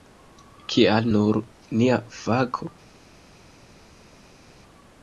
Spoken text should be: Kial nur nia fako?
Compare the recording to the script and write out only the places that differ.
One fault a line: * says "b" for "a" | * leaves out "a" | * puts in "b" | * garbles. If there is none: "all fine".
all fine